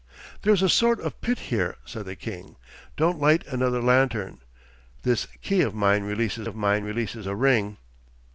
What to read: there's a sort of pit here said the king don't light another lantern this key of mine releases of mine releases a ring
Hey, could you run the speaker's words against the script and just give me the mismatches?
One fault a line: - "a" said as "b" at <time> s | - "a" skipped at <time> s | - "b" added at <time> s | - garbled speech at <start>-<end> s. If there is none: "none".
none